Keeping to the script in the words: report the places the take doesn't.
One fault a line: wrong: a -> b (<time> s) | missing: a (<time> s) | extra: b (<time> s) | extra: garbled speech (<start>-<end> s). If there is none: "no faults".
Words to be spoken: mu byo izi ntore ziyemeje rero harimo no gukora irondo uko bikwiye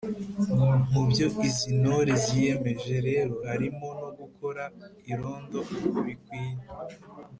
no faults